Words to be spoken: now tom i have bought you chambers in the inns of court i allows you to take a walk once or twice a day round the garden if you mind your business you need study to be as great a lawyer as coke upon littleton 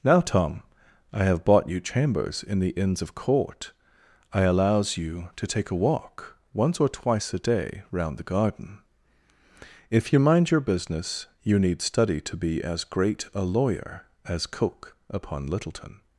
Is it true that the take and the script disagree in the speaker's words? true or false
false